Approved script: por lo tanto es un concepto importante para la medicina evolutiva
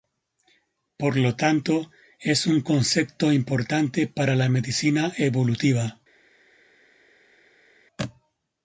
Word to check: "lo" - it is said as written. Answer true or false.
true